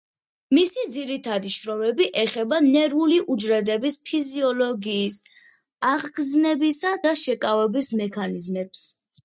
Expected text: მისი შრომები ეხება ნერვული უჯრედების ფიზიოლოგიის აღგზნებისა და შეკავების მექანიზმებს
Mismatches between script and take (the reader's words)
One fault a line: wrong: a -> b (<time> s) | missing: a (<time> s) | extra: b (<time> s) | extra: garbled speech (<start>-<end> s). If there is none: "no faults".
extra: ძირითადი (0.9 s)